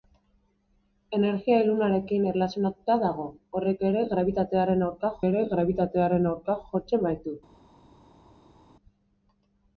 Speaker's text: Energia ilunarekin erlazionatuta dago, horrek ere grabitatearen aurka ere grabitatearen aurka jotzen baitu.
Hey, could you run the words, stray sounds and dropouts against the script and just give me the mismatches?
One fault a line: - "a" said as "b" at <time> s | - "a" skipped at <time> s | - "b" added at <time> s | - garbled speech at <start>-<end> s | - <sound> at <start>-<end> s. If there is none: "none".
none